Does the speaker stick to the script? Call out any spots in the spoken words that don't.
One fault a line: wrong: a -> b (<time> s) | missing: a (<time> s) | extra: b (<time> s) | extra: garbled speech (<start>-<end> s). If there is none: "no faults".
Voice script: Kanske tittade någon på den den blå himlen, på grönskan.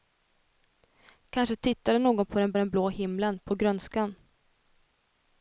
no faults